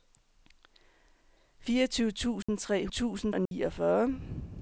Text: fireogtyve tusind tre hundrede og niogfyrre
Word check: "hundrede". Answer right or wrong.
wrong